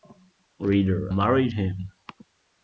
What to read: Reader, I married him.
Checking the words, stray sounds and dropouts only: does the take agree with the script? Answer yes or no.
no